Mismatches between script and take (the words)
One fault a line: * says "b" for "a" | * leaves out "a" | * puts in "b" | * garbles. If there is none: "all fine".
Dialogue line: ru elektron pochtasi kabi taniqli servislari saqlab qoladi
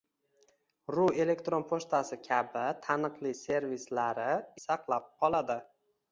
all fine